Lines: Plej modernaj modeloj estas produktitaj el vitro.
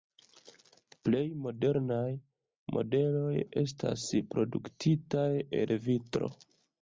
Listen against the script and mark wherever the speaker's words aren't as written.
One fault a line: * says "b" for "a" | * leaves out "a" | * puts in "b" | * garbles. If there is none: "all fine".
all fine